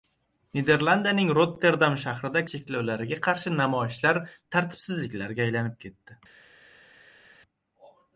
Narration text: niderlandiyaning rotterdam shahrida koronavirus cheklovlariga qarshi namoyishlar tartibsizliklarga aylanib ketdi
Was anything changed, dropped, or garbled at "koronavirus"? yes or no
yes